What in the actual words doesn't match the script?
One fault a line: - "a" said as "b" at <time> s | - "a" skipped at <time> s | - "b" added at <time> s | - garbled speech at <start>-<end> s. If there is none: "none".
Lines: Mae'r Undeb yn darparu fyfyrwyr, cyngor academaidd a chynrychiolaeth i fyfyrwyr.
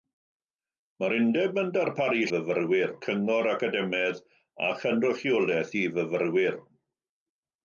none